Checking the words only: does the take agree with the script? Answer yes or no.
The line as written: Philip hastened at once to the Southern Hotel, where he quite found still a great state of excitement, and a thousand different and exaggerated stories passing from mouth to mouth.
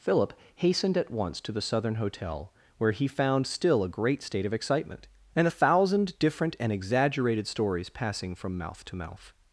no